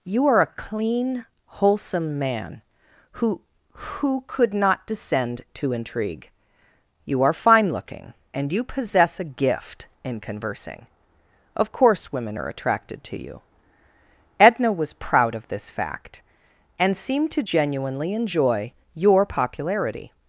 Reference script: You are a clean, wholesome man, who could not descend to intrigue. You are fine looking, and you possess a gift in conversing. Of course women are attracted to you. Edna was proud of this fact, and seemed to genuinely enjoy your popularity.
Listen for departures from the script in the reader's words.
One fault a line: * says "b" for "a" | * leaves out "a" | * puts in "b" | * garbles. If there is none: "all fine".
* puts in "who"